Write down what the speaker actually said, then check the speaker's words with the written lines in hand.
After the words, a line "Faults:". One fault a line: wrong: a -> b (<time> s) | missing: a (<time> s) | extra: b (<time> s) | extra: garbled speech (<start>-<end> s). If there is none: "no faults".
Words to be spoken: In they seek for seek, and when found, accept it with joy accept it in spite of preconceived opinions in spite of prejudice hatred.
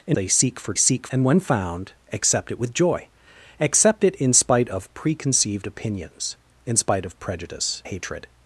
In they seek for seek, and when found, accept it with joy accept it in spite of preconceived opinions in spite of prejudice hatred.
Faults:
no faults